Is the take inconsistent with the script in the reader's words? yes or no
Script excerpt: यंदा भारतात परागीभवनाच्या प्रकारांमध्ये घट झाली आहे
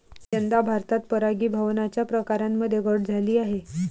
no